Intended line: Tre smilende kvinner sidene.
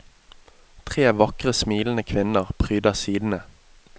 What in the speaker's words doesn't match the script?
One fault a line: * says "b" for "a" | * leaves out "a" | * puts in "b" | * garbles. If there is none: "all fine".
* puts in "vakre"
* puts in "pryder"